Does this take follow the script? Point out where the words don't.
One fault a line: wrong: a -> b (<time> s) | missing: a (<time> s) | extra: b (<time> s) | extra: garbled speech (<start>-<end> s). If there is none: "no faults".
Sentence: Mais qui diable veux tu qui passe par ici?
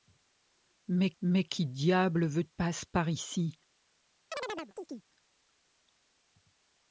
extra: mais (1.2 s)
missing: tu qui (2.4 s)